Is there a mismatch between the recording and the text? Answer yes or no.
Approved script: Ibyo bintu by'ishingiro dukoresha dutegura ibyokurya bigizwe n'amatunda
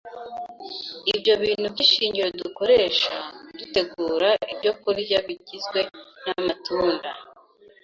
no